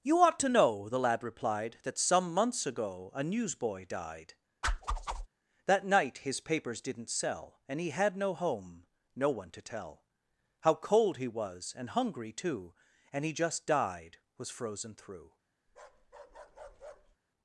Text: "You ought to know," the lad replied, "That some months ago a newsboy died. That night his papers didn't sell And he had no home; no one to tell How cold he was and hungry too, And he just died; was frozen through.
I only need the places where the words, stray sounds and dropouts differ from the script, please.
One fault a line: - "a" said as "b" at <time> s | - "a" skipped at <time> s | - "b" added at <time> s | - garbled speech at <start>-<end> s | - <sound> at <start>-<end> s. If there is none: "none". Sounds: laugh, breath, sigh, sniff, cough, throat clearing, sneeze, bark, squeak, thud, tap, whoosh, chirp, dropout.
- whoosh at 4.6-5.3 s
- bark at 15.7-17.2 s